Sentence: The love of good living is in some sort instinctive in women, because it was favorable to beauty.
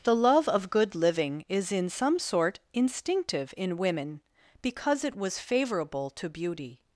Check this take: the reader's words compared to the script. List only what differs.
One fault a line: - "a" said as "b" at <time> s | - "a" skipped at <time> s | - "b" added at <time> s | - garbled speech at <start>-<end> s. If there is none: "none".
none